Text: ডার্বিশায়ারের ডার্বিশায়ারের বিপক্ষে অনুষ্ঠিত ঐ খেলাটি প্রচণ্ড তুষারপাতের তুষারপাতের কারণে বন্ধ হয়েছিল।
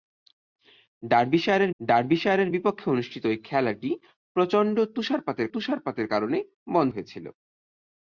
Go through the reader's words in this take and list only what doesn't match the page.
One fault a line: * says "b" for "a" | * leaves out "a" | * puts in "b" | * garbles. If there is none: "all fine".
all fine